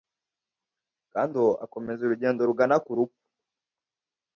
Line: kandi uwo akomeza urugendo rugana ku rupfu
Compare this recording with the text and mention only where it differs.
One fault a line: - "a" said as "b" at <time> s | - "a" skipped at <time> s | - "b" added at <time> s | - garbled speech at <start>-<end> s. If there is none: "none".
none